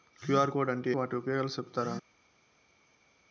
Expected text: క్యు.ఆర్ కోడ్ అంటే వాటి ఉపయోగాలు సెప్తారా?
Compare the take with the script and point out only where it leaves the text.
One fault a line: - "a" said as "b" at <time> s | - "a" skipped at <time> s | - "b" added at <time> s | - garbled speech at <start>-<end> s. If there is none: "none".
none